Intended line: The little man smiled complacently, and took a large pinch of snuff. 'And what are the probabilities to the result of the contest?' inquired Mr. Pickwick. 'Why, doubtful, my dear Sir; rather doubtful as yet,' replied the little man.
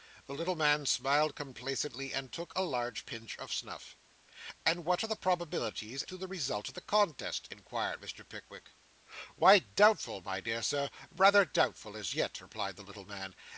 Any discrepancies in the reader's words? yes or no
no